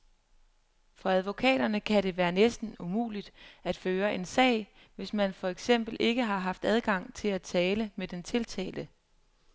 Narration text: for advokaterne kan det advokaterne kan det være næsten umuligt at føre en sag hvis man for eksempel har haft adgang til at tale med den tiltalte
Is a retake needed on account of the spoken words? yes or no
yes